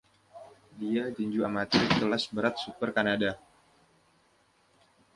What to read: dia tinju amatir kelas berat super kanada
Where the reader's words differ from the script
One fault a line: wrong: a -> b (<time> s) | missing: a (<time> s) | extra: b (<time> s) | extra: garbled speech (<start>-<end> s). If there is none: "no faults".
no faults